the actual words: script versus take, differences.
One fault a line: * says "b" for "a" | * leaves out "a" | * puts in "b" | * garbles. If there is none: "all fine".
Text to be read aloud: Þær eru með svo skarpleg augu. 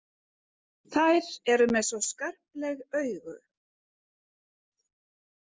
all fine